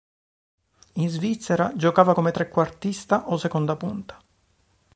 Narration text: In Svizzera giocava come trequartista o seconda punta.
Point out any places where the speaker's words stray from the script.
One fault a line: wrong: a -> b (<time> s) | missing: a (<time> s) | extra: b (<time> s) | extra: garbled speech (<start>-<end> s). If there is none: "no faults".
no faults